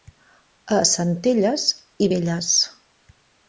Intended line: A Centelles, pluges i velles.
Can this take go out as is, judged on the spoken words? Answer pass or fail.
fail